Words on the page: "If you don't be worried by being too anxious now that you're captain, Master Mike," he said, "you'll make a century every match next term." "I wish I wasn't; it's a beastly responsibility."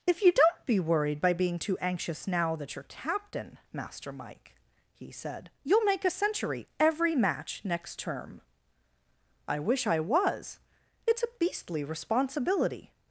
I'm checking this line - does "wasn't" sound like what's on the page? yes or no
no